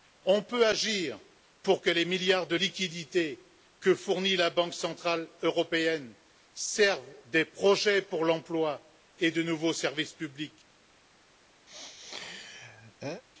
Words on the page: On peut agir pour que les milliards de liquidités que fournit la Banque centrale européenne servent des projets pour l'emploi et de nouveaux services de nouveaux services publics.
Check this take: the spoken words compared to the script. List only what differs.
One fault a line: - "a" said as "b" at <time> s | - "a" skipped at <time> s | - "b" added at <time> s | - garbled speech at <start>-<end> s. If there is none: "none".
- "de nouveaux services" skipped at 10.1 s